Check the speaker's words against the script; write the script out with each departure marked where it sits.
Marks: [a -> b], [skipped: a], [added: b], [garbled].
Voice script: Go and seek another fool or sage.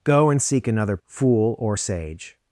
Go and seek another fool or sage.